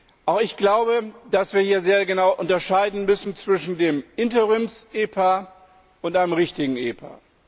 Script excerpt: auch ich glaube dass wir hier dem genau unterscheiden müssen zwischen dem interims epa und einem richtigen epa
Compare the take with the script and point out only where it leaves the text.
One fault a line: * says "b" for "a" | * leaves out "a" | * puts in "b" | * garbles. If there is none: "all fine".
* says "sehr" for "dem"